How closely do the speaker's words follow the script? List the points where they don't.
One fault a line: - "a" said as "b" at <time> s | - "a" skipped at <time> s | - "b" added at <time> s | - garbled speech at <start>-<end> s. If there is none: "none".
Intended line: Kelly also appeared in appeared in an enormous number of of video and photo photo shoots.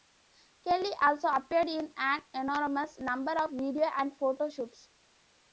- "appeared in" skipped at 1.9 s
- "of" skipped at 3.5 s
- "photo" skipped at 4.5 s